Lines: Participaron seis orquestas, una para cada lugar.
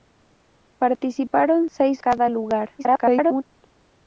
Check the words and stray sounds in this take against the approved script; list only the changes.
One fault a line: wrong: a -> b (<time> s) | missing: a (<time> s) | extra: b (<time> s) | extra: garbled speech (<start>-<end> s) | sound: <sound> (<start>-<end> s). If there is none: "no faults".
missing: orquestas una para (2.0 s)
extra: garbled speech (2.8-3.4 s)